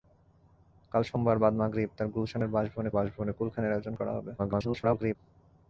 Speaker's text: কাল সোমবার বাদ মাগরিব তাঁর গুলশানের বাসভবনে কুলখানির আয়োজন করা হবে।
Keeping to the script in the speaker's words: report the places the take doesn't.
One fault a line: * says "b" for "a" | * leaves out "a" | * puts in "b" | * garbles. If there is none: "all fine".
* puts in "বাসভবনে"
* garbles